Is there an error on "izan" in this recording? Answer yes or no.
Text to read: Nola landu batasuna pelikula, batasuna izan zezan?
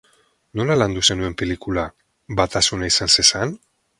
no